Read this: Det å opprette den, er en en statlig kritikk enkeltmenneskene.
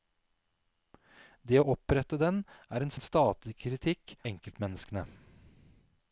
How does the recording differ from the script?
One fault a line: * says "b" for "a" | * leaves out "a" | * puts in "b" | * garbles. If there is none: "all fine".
all fine